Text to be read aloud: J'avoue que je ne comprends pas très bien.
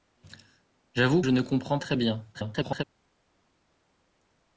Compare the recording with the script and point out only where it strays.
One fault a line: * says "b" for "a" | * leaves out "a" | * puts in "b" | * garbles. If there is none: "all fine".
* leaves out "que"
* leaves out "pas"
* garbles